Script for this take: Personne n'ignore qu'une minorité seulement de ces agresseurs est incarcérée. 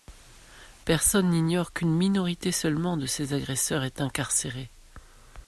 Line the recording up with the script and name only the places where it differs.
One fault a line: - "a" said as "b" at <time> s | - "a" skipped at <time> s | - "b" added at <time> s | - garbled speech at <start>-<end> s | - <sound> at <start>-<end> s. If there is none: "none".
none